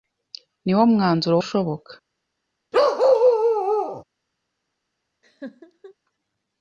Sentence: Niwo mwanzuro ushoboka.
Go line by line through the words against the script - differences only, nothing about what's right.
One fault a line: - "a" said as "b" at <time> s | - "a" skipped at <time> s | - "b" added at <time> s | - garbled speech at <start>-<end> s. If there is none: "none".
none